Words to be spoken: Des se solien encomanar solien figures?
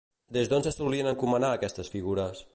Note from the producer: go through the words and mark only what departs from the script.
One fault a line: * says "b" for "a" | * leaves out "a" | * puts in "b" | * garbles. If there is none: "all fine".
* puts in "d'on"
* says "aquestes" for "solien"